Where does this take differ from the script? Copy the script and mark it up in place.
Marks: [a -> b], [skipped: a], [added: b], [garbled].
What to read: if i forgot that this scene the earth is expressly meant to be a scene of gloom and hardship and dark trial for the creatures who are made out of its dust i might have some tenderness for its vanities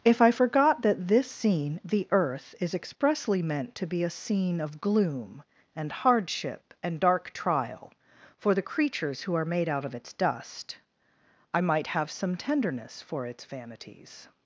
if i forgot that this scene the earth is expressly meant to be a scene of gloom and hardship and dark trial for the creatures who are made out of its dust i might have some tenderness for its vanities